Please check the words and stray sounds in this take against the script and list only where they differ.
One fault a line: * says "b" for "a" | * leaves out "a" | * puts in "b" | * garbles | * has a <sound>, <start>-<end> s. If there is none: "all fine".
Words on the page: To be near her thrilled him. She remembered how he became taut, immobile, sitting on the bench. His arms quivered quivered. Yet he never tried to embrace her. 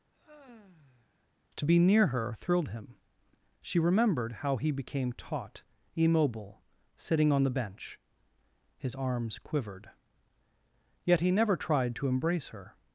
* has a sigh, 0.1-1.3 s
* leaves out "quivered"